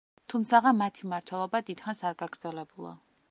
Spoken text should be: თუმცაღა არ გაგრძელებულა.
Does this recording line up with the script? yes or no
no